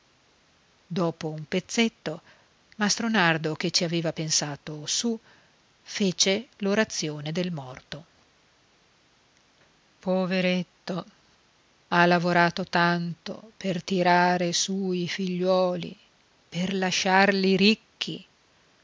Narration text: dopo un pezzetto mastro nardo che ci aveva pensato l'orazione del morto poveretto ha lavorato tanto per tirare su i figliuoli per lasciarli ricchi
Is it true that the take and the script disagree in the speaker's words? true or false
true